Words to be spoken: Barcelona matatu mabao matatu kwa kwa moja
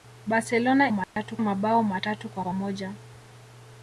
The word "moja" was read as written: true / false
true